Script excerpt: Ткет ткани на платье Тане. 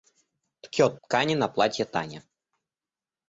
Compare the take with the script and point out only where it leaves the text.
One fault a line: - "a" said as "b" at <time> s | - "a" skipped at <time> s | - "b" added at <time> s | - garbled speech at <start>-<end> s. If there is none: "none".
none